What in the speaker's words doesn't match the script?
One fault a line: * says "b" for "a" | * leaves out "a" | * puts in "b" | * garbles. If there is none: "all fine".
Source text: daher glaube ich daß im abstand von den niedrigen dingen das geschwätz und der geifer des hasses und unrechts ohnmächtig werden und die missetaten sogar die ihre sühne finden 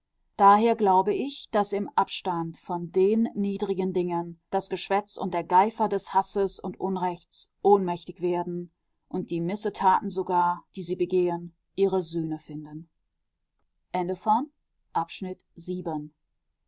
* puts in "sie begehen"